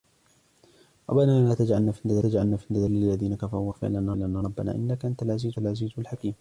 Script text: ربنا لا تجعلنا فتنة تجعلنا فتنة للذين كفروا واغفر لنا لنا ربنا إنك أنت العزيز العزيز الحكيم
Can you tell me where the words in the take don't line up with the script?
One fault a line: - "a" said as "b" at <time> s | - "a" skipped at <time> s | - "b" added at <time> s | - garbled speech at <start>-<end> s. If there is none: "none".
none